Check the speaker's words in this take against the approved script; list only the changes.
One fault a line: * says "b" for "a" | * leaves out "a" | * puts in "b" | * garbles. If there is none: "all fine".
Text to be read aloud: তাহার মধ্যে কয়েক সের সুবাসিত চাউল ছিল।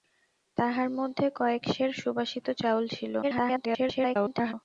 * garbles